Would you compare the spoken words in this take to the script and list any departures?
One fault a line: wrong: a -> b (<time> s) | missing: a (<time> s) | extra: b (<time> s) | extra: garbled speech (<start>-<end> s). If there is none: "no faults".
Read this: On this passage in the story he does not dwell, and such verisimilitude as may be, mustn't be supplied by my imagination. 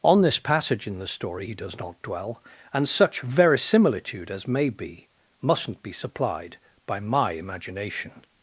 no faults